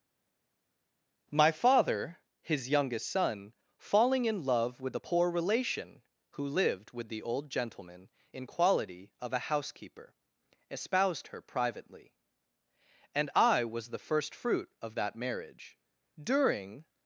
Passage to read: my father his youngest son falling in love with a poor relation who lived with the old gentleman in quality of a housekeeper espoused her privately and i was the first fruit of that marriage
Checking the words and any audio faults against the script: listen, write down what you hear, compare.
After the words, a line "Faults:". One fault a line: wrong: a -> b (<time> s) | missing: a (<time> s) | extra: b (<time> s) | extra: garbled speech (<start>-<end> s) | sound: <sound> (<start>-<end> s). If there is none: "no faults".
my father his youngest son falling in love with a poor relation who lived with the old gentleman in quality of a housekeeper espoused her privately and i was the first fruit of that marriage during
Faults:
extra: during (16.2 s)